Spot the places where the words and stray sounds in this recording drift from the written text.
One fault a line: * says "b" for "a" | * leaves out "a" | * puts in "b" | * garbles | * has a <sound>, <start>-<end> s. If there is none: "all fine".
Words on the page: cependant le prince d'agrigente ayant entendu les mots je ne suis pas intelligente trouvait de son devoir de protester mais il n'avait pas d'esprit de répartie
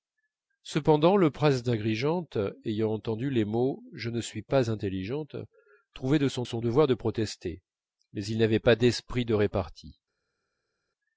* puts in "son"